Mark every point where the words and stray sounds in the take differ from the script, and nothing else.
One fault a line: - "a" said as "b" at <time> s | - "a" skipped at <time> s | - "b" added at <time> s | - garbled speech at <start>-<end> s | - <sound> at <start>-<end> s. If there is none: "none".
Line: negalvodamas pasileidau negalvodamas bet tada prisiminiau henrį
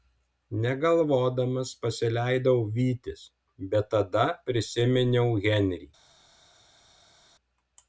- "negalvodamas" said as "vytis" at 2.8 s